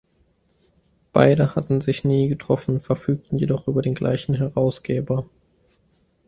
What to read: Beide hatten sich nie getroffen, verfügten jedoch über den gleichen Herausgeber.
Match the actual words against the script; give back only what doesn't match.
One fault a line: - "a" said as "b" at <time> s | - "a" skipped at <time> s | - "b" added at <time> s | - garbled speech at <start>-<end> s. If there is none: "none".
none